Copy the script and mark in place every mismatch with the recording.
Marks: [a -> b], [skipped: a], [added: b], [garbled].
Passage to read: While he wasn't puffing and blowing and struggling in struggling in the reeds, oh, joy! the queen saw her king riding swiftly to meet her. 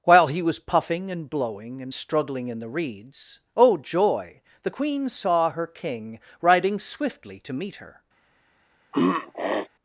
While he [wasn't -> was] puffing and blowing and struggling in [skipped: struggling in] the reeds, oh, joy! the queen saw her king riding swiftly to meet her.